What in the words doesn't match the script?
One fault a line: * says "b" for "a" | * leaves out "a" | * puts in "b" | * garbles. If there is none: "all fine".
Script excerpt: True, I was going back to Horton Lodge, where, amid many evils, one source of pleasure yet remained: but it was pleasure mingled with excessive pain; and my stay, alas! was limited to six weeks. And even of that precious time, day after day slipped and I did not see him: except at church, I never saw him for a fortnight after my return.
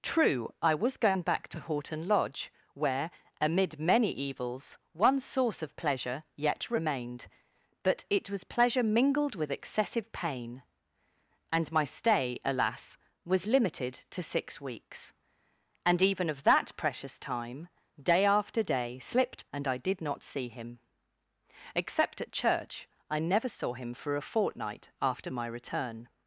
all fine